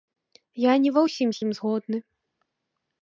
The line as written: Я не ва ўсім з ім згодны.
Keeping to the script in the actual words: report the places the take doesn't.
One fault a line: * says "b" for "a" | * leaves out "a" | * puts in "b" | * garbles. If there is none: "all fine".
all fine